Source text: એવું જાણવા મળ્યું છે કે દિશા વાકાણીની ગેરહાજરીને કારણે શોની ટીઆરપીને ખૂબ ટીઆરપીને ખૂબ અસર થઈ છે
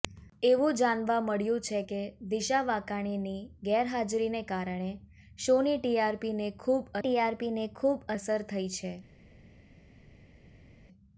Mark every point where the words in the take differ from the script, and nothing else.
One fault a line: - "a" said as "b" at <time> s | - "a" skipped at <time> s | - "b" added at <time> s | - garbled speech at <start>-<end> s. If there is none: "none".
none